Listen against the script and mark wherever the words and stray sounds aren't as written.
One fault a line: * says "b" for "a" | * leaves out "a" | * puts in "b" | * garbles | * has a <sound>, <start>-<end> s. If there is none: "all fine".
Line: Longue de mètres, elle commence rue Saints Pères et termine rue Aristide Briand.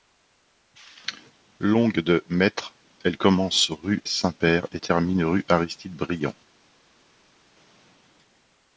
all fine